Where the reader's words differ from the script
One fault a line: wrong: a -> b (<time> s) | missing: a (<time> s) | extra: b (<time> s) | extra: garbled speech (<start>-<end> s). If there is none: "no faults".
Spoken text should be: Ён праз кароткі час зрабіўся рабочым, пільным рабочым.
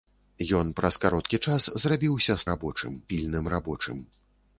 no faults